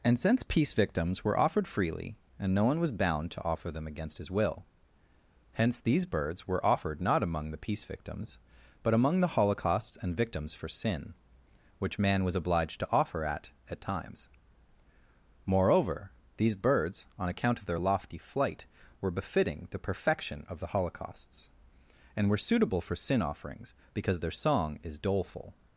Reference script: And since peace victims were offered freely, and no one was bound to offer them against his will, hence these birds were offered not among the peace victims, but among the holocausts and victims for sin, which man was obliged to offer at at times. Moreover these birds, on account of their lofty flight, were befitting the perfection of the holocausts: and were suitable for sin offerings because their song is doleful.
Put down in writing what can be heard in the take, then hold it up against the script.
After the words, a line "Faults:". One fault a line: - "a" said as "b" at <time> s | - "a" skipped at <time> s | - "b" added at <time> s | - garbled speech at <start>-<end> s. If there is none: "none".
And since peace victims were offered freely, and no one was bound to offer them against his will, hence these birds were offered not among the peace victims, but among the holocausts and victims for sin, which man was obliged to offer at at times. Moreover these birds, on account of their lofty flight, were befitting the perfection of the holocausts: and were suitable for sin offerings because their song is doleful.
Faults:
none